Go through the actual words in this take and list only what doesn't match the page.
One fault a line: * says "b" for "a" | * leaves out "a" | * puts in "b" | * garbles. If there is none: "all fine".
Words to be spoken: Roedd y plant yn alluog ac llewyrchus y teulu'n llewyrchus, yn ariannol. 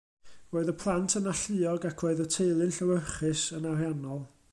* says "roedd" for "llewyrchus"